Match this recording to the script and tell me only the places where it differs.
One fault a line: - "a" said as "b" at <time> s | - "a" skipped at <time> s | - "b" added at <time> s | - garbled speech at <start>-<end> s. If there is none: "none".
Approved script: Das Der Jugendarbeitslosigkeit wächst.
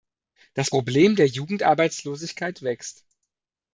- "Problem" added at 0.7 s